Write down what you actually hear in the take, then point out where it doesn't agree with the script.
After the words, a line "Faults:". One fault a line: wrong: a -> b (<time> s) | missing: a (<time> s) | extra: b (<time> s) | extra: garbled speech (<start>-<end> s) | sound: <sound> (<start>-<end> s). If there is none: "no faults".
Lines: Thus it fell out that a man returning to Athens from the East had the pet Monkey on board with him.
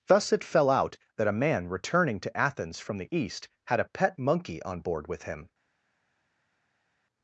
Thus it fell out that a man returning to Athens from the East had a pet Monkey on board with him.
Faults:
wrong: the -> a (3.8 s)